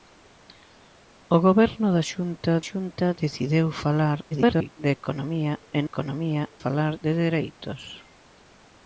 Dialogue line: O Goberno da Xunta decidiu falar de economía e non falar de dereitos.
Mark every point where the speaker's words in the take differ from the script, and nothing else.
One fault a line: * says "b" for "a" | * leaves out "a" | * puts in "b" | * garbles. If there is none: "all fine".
* puts in "Xunta"
* garbles
* says "economía" for "non"